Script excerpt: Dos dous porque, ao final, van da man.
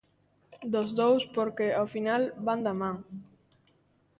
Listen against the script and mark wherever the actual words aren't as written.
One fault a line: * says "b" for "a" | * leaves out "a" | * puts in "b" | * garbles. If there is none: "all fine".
all fine